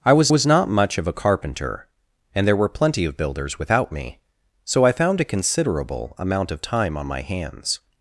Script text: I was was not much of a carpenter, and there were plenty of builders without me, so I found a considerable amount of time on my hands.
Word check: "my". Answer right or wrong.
right